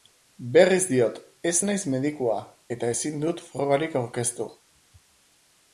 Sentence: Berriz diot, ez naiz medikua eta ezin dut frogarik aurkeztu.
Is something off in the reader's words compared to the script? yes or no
no